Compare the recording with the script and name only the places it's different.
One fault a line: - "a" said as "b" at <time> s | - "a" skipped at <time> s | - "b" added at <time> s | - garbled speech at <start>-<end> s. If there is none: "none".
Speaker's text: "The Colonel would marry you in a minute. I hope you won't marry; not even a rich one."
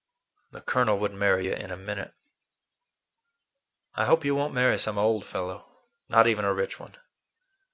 - "some old fellow" added at 4.8 s